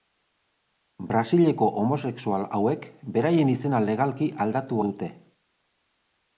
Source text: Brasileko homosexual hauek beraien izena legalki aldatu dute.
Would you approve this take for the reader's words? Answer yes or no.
yes